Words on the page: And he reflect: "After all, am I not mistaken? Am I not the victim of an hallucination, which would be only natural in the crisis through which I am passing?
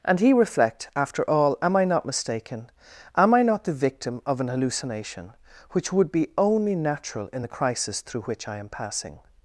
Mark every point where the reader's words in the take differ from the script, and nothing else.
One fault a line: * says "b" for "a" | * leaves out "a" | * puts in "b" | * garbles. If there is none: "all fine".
all fine